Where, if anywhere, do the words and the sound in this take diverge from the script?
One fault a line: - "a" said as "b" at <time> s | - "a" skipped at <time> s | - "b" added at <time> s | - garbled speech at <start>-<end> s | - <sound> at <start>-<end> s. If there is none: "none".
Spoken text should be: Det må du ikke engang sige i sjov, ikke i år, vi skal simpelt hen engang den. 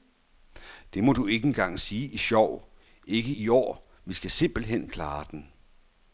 - "engang" said as "klare" at 4.9 s